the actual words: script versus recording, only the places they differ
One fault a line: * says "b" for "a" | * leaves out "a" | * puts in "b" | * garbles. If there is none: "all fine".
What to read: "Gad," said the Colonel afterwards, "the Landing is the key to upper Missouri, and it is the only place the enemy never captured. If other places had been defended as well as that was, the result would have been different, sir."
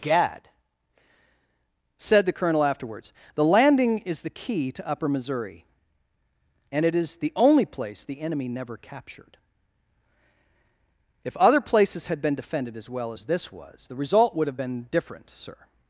* says "this" for "that"